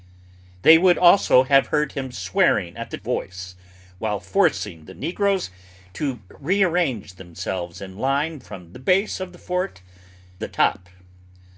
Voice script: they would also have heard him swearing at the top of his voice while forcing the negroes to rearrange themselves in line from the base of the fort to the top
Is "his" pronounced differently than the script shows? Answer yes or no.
yes